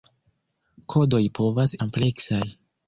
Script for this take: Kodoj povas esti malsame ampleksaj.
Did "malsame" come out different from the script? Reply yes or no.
yes